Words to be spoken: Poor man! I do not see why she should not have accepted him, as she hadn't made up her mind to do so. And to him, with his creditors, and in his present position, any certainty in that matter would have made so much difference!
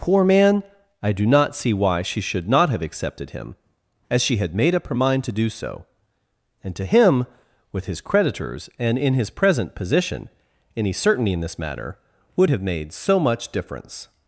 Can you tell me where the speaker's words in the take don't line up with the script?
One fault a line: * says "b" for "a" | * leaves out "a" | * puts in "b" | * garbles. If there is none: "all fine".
* says "had" for "hadn't"
* says "this" for "that"